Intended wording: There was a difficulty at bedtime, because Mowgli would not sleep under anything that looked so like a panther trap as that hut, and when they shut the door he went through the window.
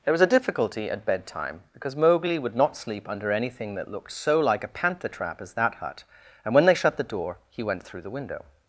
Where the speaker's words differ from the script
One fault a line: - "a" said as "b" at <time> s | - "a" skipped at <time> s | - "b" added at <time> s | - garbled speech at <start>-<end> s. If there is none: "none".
none